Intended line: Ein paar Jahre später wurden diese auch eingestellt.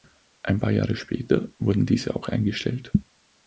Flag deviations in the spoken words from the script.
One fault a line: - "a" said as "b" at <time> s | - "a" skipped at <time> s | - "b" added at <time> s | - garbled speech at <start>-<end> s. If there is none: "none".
none